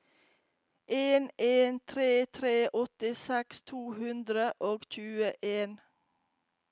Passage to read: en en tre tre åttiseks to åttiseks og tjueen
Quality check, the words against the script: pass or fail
fail